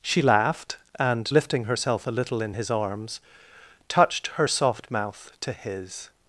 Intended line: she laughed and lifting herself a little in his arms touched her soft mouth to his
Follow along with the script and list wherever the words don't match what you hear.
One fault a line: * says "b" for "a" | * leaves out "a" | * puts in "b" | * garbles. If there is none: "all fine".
all fine